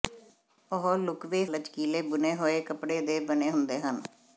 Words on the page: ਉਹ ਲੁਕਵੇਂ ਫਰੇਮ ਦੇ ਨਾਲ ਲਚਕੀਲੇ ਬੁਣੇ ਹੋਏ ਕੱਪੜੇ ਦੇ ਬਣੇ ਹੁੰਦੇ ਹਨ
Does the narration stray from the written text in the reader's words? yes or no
yes